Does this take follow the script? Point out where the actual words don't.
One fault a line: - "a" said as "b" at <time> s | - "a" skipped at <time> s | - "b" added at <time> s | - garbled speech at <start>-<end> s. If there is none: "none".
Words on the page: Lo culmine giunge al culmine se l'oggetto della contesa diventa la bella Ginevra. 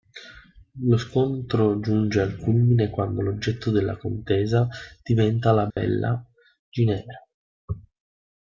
- "culmine" said as "scontro" at 1.0 s
- "se" said as "quando" at 2.9 s